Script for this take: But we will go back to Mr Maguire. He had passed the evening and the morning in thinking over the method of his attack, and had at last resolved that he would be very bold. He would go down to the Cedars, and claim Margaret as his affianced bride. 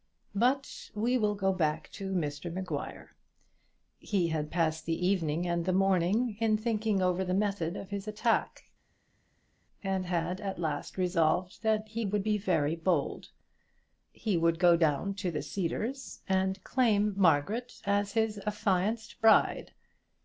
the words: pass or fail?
pass